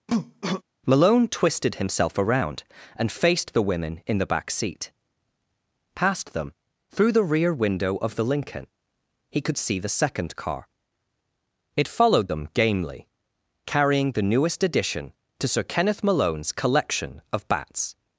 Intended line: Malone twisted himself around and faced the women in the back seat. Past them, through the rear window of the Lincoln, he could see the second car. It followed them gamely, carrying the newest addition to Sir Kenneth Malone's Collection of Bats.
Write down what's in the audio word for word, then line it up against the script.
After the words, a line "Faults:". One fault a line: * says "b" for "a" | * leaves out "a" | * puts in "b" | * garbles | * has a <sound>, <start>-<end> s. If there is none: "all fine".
Malone twisted himself around and faced the women in the back seat. Past them, through the rear window of the Lincoln, he could see the second car. It followed them gamely, carrying the newest addition to Sir Kenneth Malone's Collection of Bats.
Faults:
* has a cough, 0.1-0.6 s